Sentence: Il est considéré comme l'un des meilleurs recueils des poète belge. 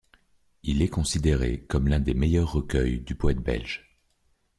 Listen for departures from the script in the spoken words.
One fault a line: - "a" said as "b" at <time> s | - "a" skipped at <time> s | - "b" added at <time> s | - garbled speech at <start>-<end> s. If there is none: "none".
- "des" said as "du" at 3.0 s